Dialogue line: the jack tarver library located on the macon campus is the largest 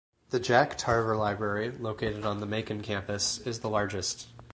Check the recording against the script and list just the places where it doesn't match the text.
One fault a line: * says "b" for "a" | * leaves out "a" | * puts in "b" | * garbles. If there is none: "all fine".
all fine